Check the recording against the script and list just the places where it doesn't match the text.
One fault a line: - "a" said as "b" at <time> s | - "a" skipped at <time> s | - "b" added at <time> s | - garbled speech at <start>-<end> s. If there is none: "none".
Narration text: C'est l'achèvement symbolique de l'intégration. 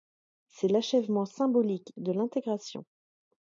none